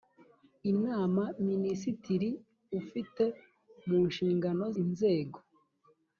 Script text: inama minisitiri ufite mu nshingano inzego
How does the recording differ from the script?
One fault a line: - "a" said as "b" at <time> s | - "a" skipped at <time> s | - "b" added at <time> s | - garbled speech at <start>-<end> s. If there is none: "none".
none